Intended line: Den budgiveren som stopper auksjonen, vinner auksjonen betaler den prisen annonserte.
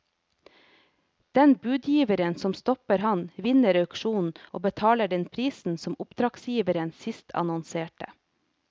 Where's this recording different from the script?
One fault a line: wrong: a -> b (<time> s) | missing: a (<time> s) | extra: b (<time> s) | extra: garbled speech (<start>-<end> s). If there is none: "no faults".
wrong: auksjonen -> ham (3.0 s)
extra: og (4.5 s)
extra: som oppdragsgiveren sist (5.8 s)